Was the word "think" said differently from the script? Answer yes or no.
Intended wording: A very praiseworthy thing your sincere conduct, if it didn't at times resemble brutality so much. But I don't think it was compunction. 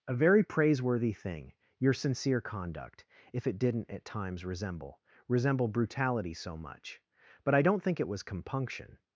no